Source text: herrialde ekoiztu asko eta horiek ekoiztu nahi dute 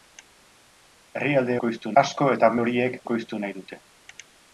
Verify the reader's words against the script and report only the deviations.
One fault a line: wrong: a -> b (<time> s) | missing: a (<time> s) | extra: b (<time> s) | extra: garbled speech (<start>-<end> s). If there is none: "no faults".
no faults